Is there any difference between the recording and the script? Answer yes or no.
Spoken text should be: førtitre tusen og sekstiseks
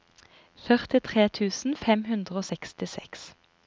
yes